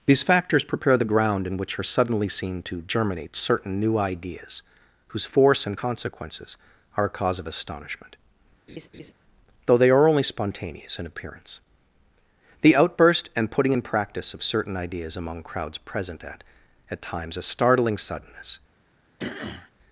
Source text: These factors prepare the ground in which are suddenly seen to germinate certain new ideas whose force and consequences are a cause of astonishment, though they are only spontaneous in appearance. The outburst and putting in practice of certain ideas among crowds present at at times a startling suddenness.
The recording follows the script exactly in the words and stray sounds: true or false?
false